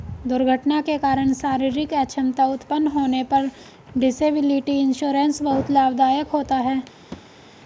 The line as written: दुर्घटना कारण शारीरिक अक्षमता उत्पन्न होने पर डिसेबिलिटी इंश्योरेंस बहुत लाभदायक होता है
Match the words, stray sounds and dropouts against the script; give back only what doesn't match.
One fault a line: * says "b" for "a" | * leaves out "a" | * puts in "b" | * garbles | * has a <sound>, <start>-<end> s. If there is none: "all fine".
* puts in "के"
* has a thud, 7.1-7.4 s